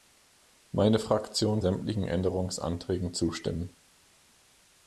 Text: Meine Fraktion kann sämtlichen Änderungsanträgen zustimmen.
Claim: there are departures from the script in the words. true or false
true